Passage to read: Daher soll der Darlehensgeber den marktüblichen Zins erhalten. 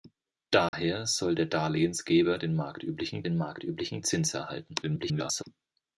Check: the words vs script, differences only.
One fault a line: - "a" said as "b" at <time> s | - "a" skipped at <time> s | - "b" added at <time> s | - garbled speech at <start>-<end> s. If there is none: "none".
- "den marktüblichen" added at 3.2 s
- garbled speech at 4.8-5.4 s